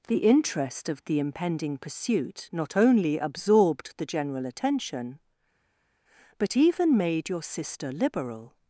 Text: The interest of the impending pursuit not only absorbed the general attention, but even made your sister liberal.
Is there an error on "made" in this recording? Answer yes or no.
no